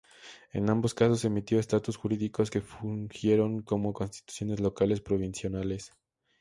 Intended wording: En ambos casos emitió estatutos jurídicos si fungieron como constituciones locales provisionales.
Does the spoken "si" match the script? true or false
false